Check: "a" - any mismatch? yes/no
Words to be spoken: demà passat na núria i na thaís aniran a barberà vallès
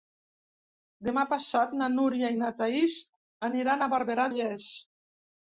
no